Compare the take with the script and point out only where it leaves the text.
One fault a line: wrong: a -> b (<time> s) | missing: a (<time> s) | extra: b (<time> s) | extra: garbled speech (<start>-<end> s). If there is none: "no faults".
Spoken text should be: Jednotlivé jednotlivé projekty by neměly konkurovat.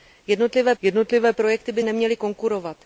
no faults